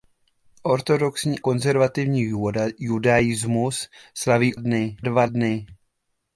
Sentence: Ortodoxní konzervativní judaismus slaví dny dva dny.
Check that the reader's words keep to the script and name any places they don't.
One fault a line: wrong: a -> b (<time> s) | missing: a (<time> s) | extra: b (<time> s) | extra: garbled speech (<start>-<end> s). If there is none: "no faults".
no faults